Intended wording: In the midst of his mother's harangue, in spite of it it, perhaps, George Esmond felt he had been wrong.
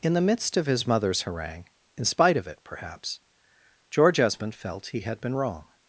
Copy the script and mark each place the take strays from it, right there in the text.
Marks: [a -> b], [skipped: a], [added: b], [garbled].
In the midst of his mother's harangue, in spite of it [skipped: it,] perhaps, George Esmond felt he had been wrong.